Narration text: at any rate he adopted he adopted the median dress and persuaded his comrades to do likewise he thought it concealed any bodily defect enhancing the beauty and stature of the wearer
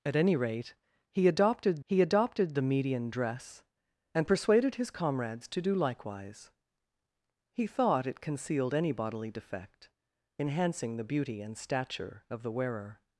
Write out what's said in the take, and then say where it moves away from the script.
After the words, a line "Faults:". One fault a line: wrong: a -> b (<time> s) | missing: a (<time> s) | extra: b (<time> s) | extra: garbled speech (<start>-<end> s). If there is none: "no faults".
at any rate he adopted he adopted the median dress and persuaded his comrades to do likewise he thought it concealed any bodily defect enhancing the beauty and stature of the wearer
Faults:
no faults